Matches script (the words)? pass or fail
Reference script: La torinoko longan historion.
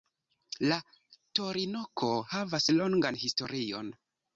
fail